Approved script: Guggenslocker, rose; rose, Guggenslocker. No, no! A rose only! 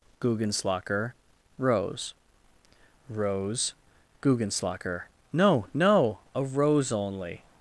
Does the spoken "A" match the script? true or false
true